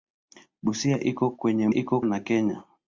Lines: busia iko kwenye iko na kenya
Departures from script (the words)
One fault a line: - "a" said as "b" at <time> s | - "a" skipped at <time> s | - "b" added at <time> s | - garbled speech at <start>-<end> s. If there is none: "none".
none